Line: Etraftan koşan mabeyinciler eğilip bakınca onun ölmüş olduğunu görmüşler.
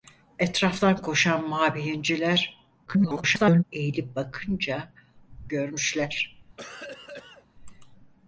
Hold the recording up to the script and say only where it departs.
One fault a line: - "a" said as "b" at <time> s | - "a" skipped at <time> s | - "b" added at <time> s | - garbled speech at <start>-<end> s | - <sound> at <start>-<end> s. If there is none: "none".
- garbled speech at 2.9-3.6 s
- "onun ölmüş olduğunu" skipped at 4.9 s
- cough at 6.6-7.5 s